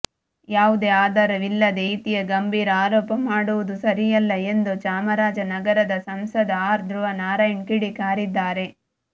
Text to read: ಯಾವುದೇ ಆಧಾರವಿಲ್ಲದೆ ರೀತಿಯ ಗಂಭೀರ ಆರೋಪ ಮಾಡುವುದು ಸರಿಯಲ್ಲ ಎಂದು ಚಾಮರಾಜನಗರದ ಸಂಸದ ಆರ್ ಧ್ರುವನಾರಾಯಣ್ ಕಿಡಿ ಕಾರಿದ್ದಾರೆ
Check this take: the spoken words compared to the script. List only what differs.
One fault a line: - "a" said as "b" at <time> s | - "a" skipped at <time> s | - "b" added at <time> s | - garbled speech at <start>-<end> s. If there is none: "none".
none